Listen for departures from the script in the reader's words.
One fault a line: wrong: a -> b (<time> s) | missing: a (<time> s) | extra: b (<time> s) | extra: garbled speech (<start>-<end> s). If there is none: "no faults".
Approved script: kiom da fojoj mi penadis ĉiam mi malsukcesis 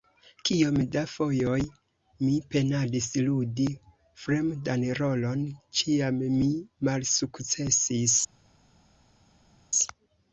extra: ludi fremdan rolon (3.3 s)